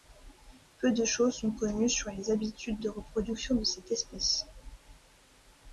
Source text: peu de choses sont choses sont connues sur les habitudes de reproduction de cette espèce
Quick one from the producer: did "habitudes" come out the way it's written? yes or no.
yes